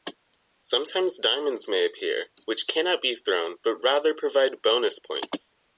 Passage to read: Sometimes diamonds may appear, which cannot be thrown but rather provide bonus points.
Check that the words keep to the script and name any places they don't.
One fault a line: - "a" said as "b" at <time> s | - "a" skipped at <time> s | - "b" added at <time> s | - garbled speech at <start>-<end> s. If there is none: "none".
none